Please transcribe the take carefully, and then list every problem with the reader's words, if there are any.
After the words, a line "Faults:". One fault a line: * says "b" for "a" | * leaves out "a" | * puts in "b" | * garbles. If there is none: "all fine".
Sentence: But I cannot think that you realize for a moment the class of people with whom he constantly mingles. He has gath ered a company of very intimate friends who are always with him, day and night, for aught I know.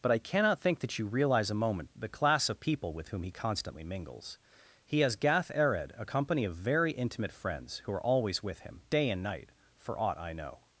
But I cannot think that you realize a moment the class of people with whom he constantly mingles. He has gath ered a company of very intimate friends who are always with him, day and night, for aught I know.
Faults:
* leaves out "for"